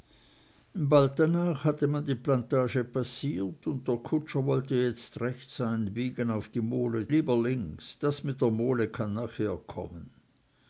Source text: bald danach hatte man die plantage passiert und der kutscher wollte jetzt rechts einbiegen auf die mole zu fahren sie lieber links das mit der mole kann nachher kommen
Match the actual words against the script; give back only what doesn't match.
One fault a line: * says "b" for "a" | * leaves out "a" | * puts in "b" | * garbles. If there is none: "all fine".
* leaves out "zu fahren sie"